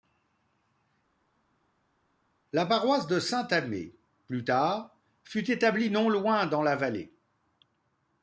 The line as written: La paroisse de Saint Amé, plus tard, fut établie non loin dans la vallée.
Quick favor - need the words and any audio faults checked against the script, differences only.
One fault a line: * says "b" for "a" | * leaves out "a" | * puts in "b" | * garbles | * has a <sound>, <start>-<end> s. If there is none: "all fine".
all fine